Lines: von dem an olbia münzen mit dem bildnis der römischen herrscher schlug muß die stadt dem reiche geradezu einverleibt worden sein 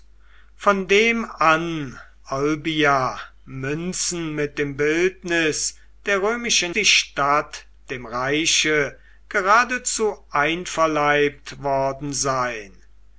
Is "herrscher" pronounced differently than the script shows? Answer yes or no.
yes